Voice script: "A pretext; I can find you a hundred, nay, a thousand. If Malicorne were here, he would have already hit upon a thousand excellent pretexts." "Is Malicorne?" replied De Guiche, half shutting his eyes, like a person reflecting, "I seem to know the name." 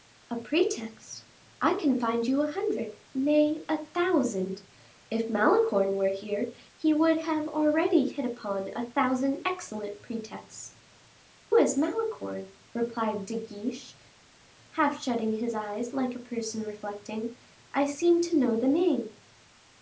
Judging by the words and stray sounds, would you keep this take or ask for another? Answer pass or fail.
pass